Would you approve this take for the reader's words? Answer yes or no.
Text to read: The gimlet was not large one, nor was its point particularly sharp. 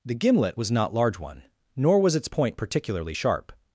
yes